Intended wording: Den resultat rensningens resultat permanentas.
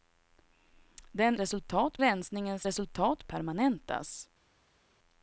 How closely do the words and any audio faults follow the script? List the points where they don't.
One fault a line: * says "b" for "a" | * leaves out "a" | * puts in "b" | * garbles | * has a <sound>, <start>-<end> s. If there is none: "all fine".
all fine